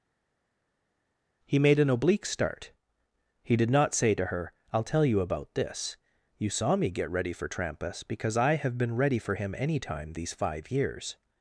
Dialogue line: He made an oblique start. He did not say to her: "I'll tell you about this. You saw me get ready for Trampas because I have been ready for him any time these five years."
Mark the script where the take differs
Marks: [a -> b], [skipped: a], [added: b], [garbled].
He made an oblique start. He did not say to her: "I'll tell you about this. You saw me get ready for Trampas because I have been ready for him any time these five years."